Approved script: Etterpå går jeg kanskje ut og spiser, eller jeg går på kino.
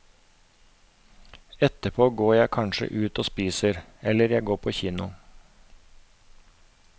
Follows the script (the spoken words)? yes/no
yes